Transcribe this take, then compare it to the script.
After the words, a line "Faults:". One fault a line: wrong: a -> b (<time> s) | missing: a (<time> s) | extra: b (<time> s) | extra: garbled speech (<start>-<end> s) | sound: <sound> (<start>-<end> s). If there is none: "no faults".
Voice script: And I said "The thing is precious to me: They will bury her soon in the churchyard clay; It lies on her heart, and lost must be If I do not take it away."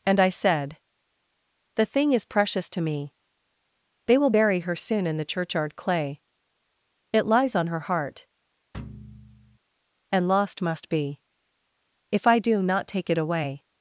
And I said "The thing is precious to me: They will bury her soon in the churchyard clay; It lies on her heart, and lost must be If I do not take it away."
Faults:
sound: thud (8.7-9.6 s)